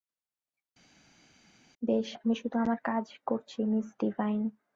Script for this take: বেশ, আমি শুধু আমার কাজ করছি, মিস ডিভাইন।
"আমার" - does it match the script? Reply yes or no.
yes